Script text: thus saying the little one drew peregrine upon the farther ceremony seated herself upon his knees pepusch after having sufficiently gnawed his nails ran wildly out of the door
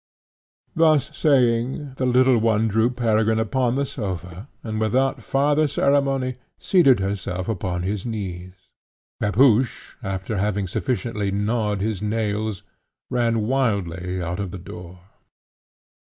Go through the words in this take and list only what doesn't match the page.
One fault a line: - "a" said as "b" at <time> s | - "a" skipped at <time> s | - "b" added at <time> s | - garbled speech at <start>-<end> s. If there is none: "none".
- "sofa and without" added at 3.8 s